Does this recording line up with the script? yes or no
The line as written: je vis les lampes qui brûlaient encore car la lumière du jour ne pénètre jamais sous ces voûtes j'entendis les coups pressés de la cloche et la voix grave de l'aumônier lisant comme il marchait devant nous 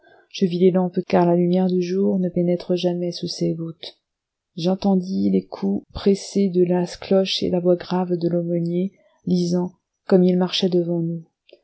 no